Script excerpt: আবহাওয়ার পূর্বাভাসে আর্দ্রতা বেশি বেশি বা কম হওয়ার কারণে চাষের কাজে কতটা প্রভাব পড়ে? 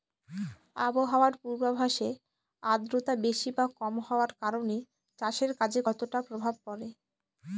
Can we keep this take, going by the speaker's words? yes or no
no